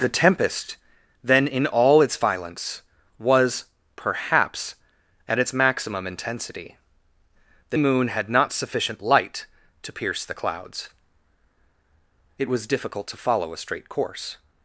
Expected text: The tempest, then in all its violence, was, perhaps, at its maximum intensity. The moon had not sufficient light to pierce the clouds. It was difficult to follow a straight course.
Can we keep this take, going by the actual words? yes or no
yes